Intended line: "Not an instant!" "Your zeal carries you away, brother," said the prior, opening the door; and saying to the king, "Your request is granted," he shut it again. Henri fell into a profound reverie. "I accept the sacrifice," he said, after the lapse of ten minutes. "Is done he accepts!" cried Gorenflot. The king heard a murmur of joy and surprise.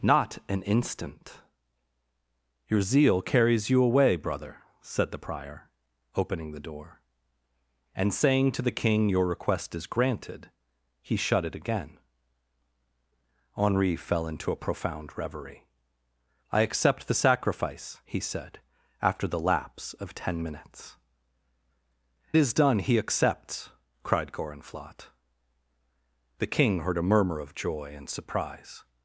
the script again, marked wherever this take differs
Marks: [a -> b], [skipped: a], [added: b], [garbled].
"Not an instant!" "Your zeal carries you away, brother," said the prior, opening the door; and saying to the king, "Your request is granted," he shut it again. Henri fell into a profound reverie. "I accept the sacrifice," he said, after the lapse of ten minutes. "Is done he accepts!" cried Gorenflot. The king heard a murmur of joy and surprise.